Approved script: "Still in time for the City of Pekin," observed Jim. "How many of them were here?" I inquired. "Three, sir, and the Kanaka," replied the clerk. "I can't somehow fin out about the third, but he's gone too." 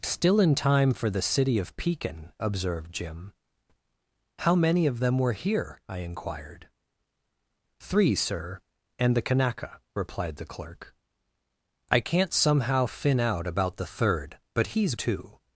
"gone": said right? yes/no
no